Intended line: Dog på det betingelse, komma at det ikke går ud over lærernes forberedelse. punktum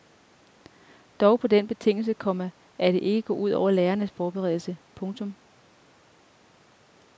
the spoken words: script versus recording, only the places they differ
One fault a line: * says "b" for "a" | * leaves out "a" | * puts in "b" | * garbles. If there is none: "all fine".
* says "den" for "det"